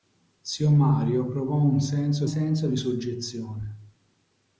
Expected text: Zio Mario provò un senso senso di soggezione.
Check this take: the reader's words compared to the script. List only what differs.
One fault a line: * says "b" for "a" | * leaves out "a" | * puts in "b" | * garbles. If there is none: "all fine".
all fine